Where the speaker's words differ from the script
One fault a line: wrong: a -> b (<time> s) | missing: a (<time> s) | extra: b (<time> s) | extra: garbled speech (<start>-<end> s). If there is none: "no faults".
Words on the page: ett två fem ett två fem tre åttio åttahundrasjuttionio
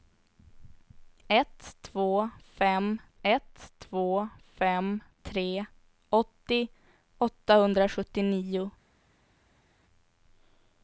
no faults